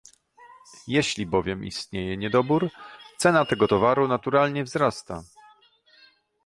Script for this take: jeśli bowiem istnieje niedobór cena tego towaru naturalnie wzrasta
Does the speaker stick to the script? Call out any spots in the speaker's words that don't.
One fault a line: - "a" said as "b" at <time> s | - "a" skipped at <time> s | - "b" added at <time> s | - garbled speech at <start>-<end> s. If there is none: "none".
none